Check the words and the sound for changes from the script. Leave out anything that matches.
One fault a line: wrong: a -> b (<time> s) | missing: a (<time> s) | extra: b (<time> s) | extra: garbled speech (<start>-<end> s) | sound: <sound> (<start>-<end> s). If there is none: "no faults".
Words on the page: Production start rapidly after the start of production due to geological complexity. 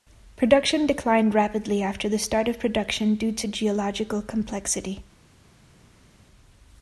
wrong: start -> declined (0.9 s)